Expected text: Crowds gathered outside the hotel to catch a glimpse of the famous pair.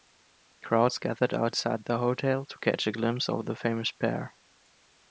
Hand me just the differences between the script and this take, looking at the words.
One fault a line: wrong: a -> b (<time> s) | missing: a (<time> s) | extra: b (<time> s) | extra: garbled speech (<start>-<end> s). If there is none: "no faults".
no faults